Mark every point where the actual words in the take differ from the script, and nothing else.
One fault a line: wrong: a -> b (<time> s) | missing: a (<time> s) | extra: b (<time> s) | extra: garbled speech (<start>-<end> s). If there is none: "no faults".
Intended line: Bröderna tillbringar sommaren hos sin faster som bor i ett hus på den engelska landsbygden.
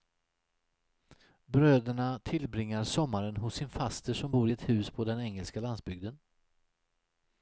no faults